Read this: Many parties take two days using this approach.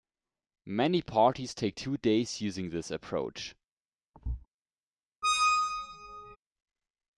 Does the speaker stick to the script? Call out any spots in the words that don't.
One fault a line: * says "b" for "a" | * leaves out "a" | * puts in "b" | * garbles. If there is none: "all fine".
all fine